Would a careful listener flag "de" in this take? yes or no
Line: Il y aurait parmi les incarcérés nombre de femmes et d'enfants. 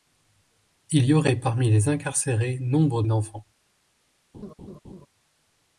yes